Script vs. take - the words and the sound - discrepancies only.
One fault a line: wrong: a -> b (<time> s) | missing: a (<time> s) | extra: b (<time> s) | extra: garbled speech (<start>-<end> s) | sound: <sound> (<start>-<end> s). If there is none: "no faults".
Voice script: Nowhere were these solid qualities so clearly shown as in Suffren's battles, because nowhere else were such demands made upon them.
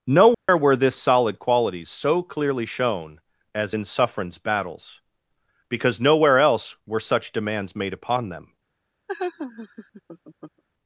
sound: dropout (0.3-0.5 s)
wrong: these -> this (0.8 s)
sound: laugh (9.1-10.6 s)